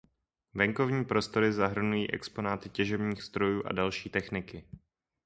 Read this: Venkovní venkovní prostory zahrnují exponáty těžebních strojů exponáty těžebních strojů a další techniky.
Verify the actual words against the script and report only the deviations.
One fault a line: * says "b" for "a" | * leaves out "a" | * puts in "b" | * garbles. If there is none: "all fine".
* leaves out "venkovní"
* leaves out "exponáty těžebních strojů"